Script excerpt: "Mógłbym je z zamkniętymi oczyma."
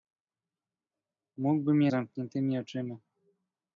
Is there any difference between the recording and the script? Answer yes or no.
no